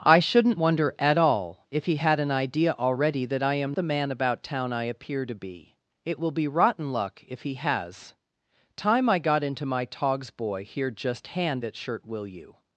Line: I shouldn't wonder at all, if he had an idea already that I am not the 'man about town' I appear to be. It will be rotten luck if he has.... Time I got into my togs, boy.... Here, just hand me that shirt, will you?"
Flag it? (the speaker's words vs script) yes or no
yes